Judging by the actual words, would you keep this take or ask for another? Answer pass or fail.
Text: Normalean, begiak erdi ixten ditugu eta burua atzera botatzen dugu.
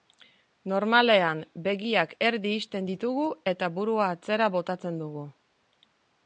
pass